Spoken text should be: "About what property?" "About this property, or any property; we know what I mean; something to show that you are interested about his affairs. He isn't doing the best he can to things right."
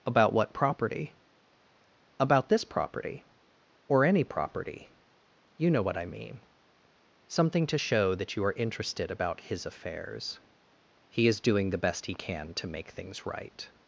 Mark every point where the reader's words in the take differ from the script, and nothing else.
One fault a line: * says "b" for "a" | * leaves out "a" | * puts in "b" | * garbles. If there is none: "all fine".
* says "you" for "we"
* says "is" for "isn't"
* puts in "make"